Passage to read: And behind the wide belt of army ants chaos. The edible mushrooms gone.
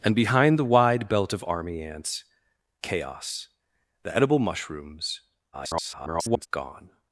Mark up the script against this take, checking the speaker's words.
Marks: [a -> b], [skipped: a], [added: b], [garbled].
And behind the wide belt of army ants chaos. The edible mushrooms [garbled] gone.